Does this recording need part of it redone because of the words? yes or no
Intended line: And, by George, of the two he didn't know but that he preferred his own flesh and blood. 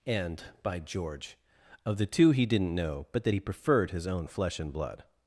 no